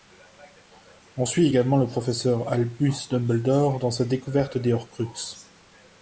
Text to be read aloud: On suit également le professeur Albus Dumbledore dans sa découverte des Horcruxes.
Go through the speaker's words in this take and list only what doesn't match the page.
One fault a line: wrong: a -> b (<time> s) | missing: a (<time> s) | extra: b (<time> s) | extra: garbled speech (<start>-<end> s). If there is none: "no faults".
no faults